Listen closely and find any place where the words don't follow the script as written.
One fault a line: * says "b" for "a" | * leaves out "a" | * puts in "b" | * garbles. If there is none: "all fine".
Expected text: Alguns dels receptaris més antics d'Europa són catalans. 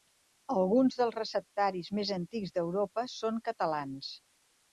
all fine